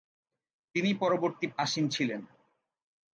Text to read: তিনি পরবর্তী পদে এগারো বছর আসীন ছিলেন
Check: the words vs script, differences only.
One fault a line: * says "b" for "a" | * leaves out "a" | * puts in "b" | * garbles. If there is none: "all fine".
* leaves out "পদে এগারো বছর"